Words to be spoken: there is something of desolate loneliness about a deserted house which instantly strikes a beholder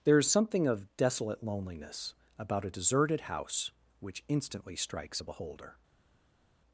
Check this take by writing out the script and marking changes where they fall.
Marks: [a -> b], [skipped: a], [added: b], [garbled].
there is something of desolate loneliness about a deserted house which instantly strikes a beholder